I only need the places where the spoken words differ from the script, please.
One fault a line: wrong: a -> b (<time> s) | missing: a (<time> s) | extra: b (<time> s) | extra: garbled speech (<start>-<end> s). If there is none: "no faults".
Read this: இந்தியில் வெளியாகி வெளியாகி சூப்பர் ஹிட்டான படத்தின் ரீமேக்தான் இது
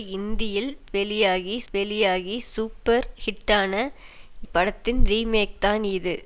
no faults